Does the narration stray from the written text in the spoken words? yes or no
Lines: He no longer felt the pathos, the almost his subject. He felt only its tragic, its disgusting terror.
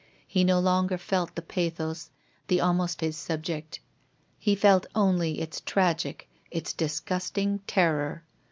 no